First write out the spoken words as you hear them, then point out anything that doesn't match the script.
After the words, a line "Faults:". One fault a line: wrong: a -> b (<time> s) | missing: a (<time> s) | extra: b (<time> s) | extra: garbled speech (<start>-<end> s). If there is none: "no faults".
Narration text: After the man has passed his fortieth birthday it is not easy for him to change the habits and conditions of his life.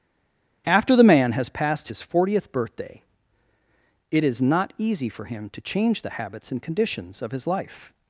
After the man has passed his fortieth birthday it is not easy for him to change the habits and conditions of his life.
Faults:
no faults